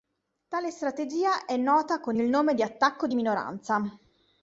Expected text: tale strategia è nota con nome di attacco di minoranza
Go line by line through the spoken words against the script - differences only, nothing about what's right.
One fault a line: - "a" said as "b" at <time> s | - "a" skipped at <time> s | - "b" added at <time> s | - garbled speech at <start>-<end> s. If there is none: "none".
- "il" added at 2.1 s